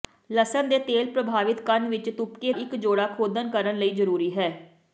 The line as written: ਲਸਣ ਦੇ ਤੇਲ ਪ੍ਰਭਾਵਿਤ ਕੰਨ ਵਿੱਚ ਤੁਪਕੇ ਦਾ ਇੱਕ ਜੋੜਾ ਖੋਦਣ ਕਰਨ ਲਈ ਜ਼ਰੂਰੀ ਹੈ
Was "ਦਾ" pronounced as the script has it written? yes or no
no